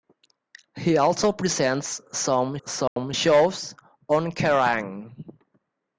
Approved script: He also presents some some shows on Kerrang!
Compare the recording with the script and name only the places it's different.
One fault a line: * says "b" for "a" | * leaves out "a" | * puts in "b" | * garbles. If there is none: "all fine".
all fine